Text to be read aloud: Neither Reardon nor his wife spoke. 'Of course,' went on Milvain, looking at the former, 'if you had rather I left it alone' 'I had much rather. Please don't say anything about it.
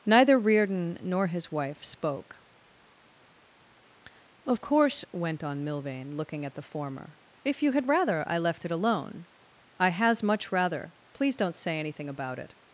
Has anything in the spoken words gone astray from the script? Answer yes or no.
yes